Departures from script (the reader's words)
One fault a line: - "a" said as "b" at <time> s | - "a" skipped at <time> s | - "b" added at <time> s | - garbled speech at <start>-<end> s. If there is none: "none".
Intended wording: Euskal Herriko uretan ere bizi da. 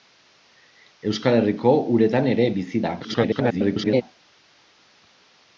- garbled speech at 3.0-4.0 s